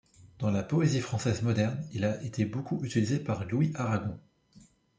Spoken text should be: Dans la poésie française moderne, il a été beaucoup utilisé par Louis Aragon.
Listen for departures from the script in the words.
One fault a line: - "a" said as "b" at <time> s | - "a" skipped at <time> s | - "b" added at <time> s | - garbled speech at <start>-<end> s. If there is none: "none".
none